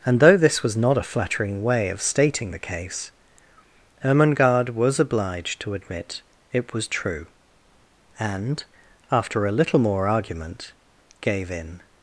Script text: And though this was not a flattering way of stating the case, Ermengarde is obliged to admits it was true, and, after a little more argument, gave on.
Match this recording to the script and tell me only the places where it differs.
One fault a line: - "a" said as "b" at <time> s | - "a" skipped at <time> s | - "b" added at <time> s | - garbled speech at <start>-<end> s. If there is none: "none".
- "is" said as "was" at 4.7 s
- "admits" said as "admit" at 5.7 s
- "on" said as "in" at 11.5 s